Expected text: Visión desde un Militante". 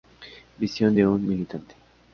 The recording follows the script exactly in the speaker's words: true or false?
false